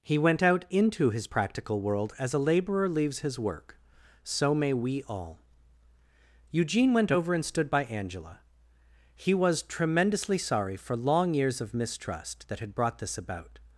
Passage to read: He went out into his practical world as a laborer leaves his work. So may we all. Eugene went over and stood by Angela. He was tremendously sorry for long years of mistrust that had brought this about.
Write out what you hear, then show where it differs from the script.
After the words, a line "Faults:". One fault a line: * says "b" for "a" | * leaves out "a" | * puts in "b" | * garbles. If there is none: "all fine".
He went out into his practical world as a laborer leaves his work. So may we all. Eugene went over and stood by Angela. He was tremendously sorry for long years of mistrust that had brought this about.
Faults:
all fine